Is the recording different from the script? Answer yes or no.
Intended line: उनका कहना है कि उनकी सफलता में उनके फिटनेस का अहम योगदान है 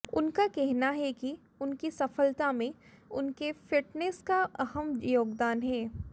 no